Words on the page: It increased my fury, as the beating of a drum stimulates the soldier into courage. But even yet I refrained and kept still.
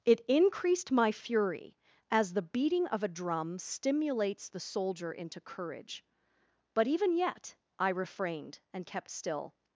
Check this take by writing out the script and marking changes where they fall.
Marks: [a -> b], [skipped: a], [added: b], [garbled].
It increased my fury, as the beating of a drum stimulates the soldier into courage. But even yet I refrained and kept still.